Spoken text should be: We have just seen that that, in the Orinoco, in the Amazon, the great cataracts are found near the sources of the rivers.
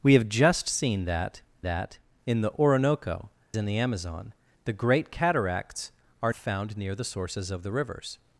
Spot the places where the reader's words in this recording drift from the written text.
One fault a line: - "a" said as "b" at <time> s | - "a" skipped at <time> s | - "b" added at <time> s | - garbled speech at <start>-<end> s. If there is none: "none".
none